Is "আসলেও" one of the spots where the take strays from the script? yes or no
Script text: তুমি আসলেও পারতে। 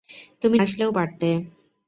no